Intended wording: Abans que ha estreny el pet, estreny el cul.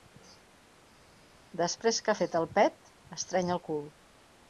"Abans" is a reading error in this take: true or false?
true